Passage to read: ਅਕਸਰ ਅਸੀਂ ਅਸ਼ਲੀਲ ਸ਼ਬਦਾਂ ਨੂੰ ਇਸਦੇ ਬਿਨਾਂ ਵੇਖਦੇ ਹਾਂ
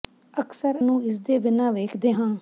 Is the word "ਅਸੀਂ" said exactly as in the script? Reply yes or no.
no